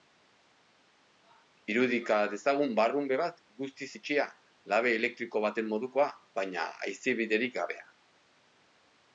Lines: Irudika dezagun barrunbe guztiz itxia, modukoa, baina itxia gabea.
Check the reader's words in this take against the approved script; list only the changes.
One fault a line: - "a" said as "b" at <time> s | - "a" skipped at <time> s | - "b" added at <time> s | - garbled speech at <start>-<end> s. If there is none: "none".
- "bat" added at 3.2 s
- "labe elektriko baten" added at 4.7 s
- "itxia" said as "haizebiderik" at 6.9 s